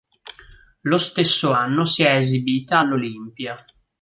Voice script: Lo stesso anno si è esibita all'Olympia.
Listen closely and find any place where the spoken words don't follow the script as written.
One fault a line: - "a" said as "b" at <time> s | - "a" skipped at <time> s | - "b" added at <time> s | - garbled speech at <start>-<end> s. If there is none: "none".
none